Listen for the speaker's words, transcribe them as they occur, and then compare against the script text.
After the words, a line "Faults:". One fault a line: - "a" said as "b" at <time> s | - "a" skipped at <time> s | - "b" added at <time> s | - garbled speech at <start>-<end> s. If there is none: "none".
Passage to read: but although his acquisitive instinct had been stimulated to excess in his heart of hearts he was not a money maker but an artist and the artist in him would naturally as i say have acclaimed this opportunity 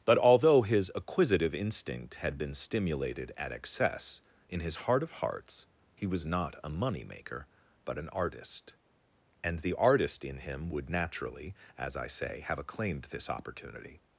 but although his acquisitive instinct had been stimulated at excess in his heart of hearts he was not a money maker but an artist and the artist in him would naturally as i say have acclaimed this opportunity
Faults:
- "to" said as "at" at 3.4 s